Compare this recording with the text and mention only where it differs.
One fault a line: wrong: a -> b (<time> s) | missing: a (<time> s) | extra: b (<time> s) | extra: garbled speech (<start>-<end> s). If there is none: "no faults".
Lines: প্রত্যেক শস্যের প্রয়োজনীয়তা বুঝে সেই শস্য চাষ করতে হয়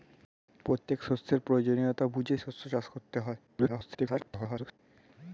missing: সেই (2.4 s)
extra: garbled speech (3.5-4.8 s)